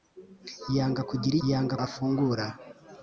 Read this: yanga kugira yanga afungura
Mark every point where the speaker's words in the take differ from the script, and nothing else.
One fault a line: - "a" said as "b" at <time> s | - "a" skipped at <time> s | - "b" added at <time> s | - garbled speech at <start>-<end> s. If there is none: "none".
none